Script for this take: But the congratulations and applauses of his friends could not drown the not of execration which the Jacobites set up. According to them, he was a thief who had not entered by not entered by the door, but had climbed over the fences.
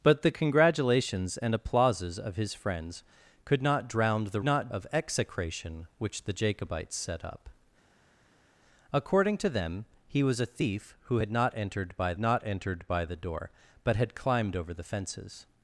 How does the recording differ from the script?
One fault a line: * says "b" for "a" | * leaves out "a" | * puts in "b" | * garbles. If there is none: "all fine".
all fine